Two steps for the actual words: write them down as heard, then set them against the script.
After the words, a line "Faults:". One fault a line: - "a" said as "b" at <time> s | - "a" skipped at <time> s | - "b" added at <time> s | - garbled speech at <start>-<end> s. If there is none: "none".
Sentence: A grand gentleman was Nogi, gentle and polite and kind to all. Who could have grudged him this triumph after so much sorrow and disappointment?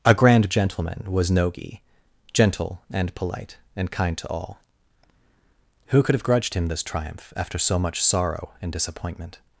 A grand gentleman was Nogi, gentle and polite and kind to all. Who could have grudged him this triumph after so much sorrow and disappointment?
Faults:
none